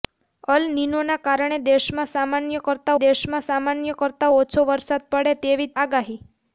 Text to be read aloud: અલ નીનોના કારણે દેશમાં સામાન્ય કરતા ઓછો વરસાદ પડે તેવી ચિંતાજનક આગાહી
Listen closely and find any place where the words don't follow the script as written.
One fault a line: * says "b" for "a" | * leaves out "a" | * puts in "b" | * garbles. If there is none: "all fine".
* puts in "દેશમાં સામાન્ય કરતા"
* leaves out "ચિંતાજનક"